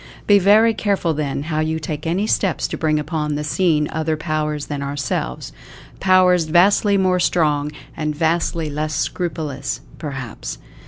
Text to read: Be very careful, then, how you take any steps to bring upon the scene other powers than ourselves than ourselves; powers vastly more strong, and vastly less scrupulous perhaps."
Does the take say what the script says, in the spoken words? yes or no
no